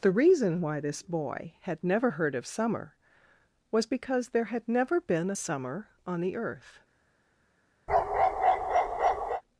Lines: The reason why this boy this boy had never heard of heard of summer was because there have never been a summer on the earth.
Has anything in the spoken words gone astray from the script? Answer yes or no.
yes